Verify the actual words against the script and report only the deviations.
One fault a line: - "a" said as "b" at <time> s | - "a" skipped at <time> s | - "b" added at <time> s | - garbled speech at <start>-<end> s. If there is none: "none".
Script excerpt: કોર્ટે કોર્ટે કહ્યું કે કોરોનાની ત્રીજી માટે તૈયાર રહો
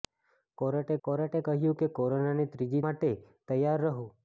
none